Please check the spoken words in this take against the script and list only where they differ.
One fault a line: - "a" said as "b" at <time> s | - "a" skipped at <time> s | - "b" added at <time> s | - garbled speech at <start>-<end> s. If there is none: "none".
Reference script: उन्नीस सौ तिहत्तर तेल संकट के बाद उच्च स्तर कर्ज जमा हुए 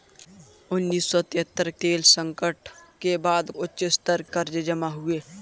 none